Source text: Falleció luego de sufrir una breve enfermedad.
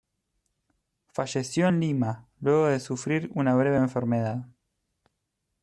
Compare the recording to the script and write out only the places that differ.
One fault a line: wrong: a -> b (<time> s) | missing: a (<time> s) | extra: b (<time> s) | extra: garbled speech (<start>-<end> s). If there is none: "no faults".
extra: en Lima (1.7 s)